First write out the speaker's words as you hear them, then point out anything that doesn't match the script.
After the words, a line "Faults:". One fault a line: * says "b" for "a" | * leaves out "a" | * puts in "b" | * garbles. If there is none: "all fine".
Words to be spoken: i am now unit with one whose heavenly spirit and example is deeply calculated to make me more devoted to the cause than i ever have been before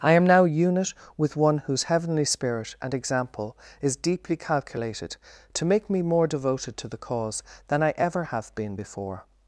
i am now unit with one whose heavenly spirit and example is deeply calculated to make me more devoted to the cause than i ever have been before
Faults:
all fine